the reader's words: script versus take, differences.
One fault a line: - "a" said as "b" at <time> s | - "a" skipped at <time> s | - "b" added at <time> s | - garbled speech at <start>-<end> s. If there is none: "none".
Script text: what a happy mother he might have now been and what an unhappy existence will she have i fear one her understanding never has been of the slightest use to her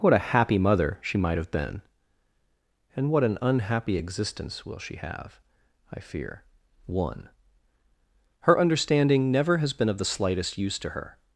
- "he" said as "she" at 1.0 s
- "now" skipped at 1.5 s